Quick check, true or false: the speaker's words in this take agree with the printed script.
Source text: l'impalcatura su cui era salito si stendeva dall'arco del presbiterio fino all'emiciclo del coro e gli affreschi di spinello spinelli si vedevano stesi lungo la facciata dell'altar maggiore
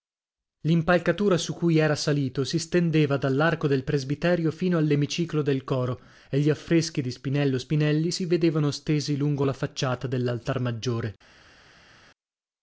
true